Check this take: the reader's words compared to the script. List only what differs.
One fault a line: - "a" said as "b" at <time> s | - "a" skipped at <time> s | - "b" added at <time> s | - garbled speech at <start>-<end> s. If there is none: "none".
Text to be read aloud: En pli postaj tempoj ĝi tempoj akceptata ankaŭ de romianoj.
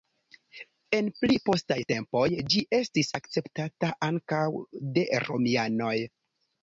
- "tempoj" said as "estis" at 2.8 s